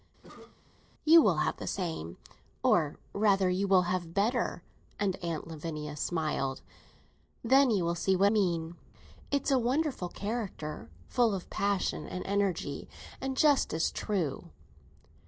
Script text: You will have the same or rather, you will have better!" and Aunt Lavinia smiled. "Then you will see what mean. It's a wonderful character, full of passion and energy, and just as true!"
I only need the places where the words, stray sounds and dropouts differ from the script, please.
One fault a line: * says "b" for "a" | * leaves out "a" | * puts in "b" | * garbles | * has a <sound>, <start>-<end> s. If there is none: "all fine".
* has a cough, 0.2-0.6 s